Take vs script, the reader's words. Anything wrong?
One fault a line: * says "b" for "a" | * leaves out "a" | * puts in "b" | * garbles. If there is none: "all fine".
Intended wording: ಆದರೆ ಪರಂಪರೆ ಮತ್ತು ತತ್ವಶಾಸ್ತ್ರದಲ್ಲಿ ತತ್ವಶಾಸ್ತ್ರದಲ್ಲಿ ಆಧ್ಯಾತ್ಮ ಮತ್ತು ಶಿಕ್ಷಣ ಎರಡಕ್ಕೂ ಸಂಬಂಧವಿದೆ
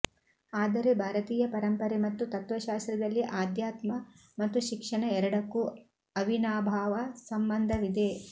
* puts in "ಭಾರತೀಯ"
* leaves out "ತತ್ವಶಾಸ್ತ್ರದಲ್ಲಿ"
* puts in "ಅವಿನಾಭಾವ"